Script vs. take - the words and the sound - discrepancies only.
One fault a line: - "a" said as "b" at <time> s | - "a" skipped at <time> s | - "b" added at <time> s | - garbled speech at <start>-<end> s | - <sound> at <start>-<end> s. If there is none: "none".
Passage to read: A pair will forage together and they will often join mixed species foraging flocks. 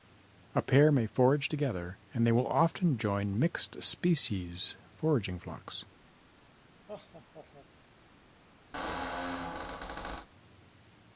- "will" said as "may" at 0.9 s
- laugh at 6.9-7.7 s
- squeak at 8.7-10.3 s